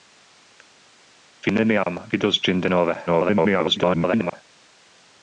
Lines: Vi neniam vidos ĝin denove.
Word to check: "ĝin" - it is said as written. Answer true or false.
true